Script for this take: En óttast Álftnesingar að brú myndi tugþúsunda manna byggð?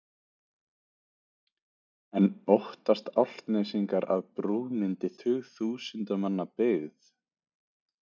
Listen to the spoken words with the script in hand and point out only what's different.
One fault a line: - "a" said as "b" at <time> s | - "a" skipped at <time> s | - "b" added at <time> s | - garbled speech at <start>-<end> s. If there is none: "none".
none